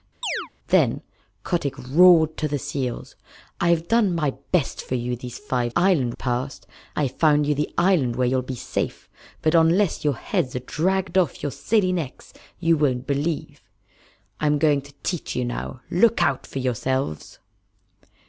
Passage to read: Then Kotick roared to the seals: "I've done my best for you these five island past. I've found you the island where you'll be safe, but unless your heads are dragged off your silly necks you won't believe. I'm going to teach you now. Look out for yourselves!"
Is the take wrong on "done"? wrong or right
right